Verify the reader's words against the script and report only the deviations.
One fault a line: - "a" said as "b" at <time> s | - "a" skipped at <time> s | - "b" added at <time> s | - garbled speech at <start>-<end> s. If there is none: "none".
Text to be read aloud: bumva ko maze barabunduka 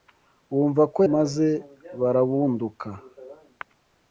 none